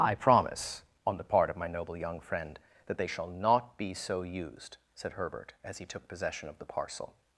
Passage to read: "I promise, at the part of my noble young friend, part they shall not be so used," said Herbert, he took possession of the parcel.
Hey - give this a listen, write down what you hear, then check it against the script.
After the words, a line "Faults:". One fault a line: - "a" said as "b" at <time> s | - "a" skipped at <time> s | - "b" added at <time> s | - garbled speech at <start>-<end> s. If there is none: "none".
"I promise, on the part of my noble young friend, that they shall not be so used," said Herbert, as he took possession of the parcel.
Faults:
- "at" said as "on" at 1.0 s
- "part" said as "that" at 2.9 s
- "as" added at 5.6 s